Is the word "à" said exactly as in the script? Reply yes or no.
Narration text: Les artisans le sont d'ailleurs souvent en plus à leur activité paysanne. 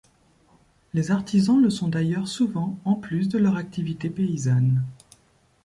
no